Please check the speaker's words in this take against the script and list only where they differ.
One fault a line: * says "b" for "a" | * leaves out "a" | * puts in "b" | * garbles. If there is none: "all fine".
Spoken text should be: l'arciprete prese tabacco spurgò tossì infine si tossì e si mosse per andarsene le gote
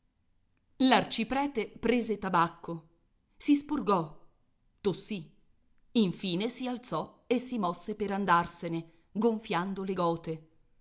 * puts in "si"
* says "alzò" for "tossì"
* puts in "gonfiando"